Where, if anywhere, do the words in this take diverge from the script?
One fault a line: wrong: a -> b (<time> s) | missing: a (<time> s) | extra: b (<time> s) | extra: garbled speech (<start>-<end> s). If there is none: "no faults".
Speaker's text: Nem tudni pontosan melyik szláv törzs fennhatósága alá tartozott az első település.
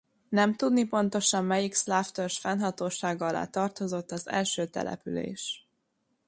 no faults